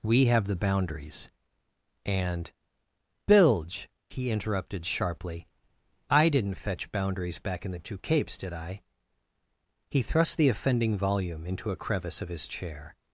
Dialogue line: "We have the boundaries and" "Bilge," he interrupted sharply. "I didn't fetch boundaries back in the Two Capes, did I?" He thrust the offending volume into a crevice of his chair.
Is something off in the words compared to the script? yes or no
no